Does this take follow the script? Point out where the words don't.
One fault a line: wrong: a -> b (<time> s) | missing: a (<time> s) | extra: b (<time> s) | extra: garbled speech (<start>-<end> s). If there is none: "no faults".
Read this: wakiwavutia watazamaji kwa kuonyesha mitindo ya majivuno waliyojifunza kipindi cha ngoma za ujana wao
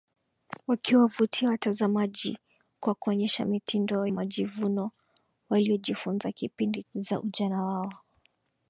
missing: ya (4.1 s)
missing: cha ngoma (6.8 s)